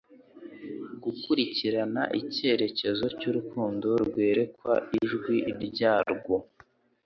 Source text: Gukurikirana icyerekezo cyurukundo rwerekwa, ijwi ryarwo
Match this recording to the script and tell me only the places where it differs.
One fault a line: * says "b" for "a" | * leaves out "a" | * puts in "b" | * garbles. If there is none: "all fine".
all fine